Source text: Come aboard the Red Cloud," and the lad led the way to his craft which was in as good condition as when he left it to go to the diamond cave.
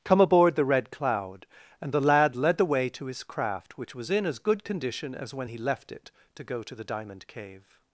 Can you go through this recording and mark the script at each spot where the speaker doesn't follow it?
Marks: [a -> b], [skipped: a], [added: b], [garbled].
Come aboard the Red Cloud," and the lad led the way to his craft which was in as good condition as when he left it to go to the diamond cave.